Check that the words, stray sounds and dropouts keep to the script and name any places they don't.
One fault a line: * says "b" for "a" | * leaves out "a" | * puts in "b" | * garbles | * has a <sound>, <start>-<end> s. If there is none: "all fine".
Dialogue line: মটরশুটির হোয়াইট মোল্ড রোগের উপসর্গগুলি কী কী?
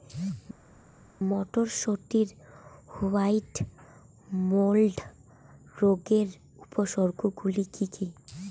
all fine